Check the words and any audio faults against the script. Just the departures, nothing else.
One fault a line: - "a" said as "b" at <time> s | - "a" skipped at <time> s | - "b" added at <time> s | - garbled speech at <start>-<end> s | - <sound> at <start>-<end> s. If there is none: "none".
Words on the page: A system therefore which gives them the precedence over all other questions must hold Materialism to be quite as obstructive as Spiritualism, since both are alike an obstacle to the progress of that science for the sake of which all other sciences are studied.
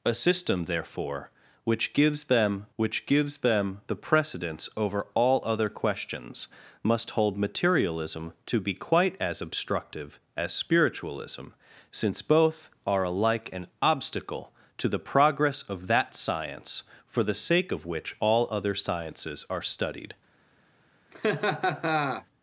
- "which gives them" added at 2.7 s
- laugh at 21.1-22.3 s